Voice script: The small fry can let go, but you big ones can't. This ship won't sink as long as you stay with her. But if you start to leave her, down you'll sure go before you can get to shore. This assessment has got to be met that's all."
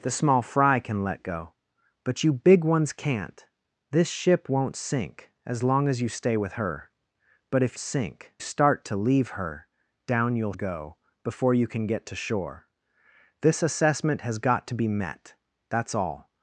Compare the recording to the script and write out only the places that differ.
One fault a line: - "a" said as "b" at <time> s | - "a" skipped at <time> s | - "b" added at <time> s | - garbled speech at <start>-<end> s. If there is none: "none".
- "you" said as "sink" at 7.8 s
- "sure" skipped at 10.5 s